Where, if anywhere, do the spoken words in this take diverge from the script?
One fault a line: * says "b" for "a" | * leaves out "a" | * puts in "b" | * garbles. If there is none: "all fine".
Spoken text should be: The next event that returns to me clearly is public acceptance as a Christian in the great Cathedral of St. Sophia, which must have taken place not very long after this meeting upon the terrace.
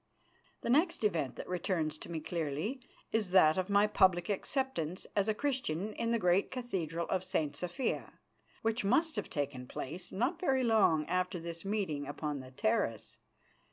* puts in "that of my"